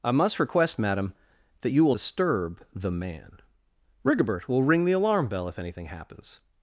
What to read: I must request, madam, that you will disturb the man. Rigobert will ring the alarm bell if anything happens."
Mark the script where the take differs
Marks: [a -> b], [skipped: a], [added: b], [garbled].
I must request, madam, that you will disturb the man. Rigobert will ring the alarm bell if anything happens."